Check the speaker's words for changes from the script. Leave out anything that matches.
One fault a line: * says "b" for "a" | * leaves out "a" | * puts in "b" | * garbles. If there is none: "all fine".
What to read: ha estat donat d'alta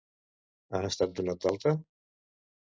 all fine